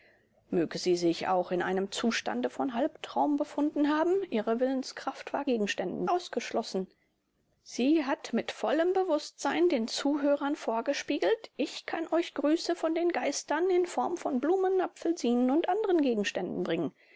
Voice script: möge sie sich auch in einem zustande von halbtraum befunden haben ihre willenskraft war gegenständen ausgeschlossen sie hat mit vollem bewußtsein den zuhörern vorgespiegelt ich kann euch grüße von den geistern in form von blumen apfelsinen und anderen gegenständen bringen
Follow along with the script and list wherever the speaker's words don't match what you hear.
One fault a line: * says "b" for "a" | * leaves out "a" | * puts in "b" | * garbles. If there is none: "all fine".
all fine